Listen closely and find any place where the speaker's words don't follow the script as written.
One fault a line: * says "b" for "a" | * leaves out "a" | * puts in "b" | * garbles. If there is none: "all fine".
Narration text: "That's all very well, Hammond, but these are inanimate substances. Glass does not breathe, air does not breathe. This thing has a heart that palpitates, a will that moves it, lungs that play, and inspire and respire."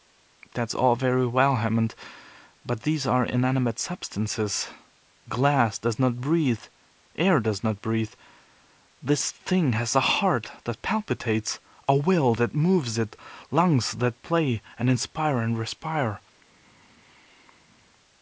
all fine